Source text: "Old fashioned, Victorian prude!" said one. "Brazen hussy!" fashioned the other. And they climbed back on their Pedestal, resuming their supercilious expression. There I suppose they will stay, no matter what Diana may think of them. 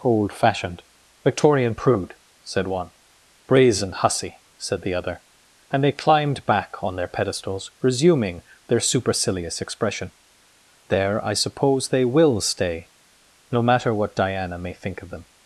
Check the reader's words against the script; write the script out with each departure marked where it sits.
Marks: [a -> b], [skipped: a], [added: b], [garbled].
"Old fashioned, Victorian prude!" said one. "Brazen hussy!" [fashioned -> said] the other. And they climbed back on their [Pedestal, -> Pedestals] resuming their supercilious expression. There I suppose they will stay, no matter what Diana may think of them.